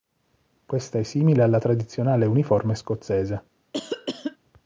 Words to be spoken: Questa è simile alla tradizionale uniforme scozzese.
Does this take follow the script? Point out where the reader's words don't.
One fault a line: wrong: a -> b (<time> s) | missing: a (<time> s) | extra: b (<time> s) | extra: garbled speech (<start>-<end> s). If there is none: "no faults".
no faults